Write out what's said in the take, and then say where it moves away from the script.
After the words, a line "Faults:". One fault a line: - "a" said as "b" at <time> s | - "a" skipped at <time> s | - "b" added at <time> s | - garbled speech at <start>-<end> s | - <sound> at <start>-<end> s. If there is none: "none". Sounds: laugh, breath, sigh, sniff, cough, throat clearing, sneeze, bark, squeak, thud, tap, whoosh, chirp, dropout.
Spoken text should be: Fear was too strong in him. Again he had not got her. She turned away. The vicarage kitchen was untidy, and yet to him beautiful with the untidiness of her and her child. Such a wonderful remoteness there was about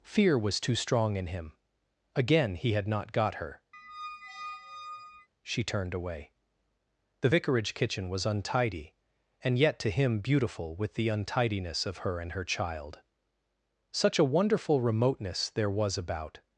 Fear was too strong in him. Again he had not got her. She turned away. The vicarage kitchen was untidy, and yet to him beautiful with the untidiness of her and her child. Such a wonderful remoteness there was about
Faults:
- squeak at 3.7-5.3 s